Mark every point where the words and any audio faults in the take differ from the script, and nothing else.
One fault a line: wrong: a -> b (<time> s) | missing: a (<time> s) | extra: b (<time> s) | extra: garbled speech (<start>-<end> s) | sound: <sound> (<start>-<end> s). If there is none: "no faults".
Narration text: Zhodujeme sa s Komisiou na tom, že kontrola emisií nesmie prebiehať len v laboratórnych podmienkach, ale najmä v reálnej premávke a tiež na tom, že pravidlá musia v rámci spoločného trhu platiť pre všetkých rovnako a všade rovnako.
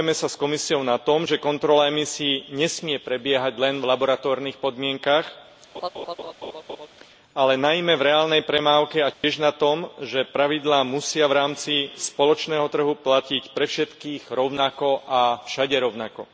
sound: laugh (5.7-6.9 s)
sound: dropout (9.1-9.2 s)